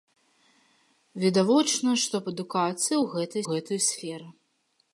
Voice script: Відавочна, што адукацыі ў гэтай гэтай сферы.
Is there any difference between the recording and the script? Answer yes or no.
no